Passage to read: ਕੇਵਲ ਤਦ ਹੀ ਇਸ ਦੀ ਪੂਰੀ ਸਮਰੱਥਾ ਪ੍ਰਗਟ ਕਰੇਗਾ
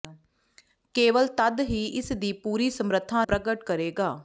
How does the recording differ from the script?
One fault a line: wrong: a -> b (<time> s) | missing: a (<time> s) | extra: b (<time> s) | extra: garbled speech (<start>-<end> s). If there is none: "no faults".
no faults